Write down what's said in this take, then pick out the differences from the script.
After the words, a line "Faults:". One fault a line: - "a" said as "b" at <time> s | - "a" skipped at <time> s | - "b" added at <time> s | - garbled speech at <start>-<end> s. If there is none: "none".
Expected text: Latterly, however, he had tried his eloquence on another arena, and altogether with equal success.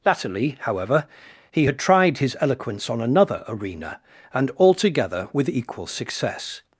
Latterly, however, he had tried his eloquence on another arena, and altogether with equal success.
Faults:
none